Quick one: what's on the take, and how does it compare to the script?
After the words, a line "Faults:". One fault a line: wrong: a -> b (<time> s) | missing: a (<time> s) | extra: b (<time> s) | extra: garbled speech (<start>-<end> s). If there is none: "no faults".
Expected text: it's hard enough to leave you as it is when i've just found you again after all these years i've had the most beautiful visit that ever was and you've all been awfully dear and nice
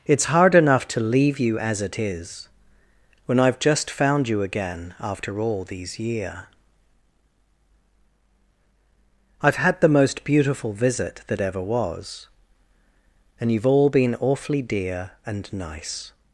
it's hard enough to leave you as it is when i've just found you again after all these year i've had the most beautiful visit that ever was and you've all been awfully dear and nice
Faults:
wrong: years -> year (6.0 s)